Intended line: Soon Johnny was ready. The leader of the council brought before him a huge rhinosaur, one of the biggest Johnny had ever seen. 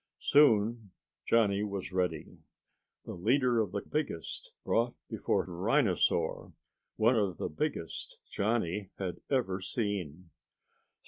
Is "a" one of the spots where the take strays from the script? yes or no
yes